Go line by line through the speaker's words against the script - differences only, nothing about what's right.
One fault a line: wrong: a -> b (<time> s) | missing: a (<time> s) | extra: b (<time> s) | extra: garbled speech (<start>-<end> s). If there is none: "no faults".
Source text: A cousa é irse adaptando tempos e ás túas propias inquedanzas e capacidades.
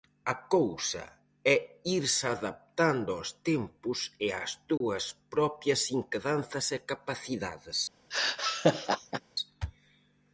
extra: aos (3.1 s)